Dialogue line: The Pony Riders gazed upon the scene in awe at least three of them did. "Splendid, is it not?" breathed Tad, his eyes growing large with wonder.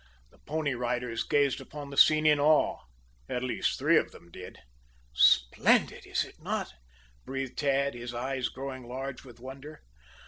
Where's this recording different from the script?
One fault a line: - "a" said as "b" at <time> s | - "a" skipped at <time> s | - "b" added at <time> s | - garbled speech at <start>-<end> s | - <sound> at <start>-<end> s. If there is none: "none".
none